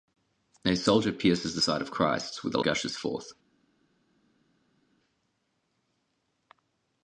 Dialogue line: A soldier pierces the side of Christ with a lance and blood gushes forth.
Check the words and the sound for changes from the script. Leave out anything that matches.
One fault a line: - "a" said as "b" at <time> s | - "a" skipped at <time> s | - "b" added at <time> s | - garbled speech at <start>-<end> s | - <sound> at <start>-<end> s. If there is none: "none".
- "lance and blood" skipped at 2.6 s